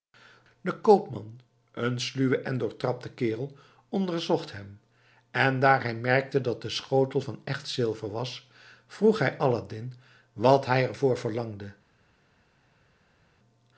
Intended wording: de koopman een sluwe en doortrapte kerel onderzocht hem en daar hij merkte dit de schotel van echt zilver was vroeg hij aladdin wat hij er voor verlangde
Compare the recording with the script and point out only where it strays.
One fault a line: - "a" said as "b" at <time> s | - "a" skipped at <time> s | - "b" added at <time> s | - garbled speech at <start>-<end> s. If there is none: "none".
- "dit" said as "dat" at 6.4 s